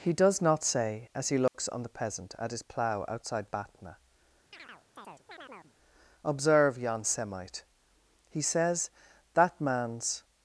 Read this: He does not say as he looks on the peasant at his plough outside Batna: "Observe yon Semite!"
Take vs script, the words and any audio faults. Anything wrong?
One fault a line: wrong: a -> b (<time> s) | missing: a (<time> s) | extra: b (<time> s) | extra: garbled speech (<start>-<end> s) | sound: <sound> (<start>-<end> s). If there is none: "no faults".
sound: dropout (1.5-1.5 s)
sound: chirp (4.5-5.8 s)
extra: He says That man's (8.3 s)